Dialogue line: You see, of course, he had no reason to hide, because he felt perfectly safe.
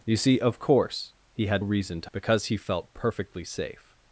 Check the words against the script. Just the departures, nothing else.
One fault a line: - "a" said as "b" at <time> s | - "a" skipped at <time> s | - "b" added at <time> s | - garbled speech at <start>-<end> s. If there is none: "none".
- "no" skipped at 1.6 s
- "hide" skipped at 2.1 s